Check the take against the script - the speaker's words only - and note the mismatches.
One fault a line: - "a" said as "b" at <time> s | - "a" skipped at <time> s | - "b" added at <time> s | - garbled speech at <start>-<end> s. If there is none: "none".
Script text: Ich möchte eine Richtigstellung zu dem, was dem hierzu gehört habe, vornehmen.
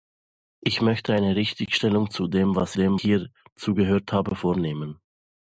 none